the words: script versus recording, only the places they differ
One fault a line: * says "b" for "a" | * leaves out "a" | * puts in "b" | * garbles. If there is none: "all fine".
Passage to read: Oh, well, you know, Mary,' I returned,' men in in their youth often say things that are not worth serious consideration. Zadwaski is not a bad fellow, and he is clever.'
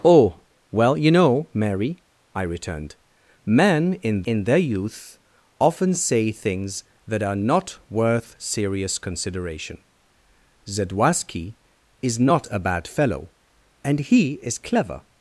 all fine